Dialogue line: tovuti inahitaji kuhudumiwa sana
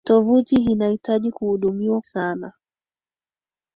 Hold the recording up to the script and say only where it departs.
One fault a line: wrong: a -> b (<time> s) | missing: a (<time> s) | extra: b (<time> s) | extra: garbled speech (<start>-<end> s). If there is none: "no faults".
no faults